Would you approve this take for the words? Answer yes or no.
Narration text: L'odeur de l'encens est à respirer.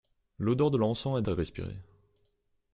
yes